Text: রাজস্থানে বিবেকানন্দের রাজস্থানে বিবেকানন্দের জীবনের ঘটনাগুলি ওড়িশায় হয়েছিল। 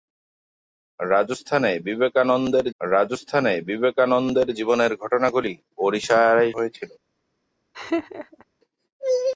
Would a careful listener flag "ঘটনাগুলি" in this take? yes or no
no